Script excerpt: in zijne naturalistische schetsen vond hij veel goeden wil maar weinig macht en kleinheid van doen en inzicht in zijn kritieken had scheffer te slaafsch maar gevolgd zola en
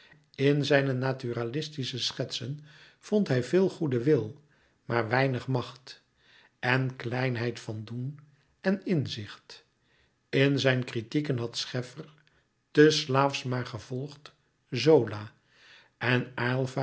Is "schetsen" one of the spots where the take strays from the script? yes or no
no